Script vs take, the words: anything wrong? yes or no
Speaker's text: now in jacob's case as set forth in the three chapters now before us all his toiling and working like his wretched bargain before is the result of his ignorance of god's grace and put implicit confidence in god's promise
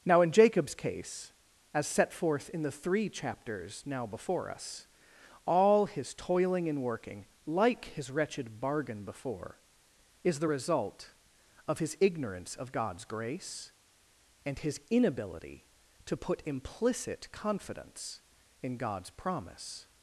yes